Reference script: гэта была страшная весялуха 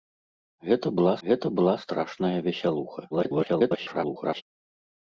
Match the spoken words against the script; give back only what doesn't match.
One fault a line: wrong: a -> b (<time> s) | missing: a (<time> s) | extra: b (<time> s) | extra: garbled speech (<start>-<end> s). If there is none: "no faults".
extra: гэта была (1.3 s)
extra: garbled speech (3.1-4.4 s)